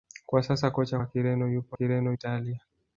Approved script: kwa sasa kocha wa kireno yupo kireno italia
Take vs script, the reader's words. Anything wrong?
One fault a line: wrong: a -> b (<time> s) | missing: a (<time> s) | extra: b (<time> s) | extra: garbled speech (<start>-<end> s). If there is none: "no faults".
no faults